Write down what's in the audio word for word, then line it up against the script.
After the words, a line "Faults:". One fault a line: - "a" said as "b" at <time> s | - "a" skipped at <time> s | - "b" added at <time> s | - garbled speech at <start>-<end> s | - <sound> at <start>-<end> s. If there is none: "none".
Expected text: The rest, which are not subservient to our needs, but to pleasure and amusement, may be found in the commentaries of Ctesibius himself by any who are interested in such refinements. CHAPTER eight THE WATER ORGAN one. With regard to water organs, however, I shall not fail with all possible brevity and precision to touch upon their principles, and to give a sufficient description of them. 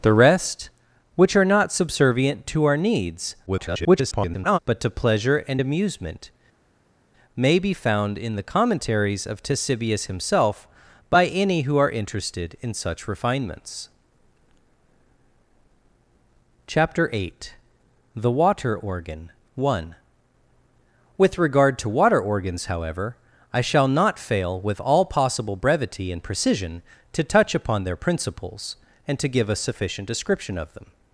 The rest, which are not subservient to our needs, [garbled] but to pleasure and amusement, may be found in the commentaries of Ctesibius himself by any who are interested in such refinements. CHAPTER eight THE WATER ORGAN one. With regard to water organs, however, I shall not fail with all possible brevity and precision to touch upon their principles, and to give a sufficient description of them.
Faults:
- garbled speech at 3.5-4.6 s